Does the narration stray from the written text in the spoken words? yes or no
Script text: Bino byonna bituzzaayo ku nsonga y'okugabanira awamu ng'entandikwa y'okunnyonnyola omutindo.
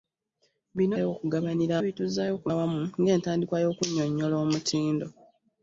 yes